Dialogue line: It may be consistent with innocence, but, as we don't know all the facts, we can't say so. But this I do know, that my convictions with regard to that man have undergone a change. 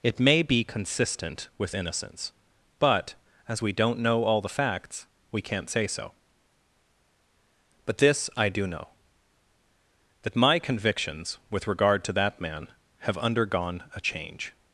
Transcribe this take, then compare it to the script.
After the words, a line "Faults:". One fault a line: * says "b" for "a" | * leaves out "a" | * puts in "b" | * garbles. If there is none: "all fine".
It may be consistent with innocence, but, as we don't know all the facts, we can't say so. But this I do know, that my convictions with regard to that man have undergone a change.
Faults:
all fine